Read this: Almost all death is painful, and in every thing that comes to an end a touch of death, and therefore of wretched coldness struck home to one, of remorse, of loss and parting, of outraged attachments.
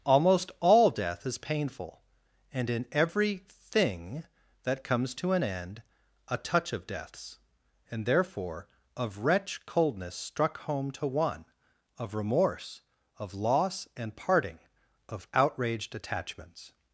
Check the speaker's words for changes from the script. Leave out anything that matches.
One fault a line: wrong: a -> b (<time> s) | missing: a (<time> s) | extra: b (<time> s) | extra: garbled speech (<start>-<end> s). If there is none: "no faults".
wrong: death -> deaths (6.9 s)
wrong: wretched -> wretch (9.2 s)